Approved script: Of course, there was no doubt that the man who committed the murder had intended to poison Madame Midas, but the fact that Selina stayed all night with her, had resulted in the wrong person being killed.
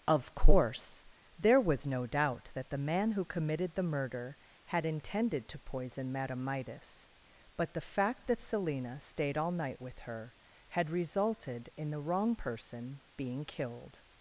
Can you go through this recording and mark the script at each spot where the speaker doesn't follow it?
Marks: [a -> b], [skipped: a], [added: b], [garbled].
Of course, there was no doubt that the man who committed the murder had intended to poison Madame Midas, but the fact that Selina stayed all night with her, had resulted in the wrong person being killed.